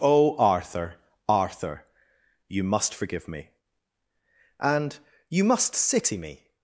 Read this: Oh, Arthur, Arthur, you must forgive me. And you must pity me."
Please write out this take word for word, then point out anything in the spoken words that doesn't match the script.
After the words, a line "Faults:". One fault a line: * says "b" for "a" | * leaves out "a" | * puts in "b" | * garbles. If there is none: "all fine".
Oh, Arthur, Arthur, you must forgive me. And you must city me."
Faults:
* says "city" for "pity"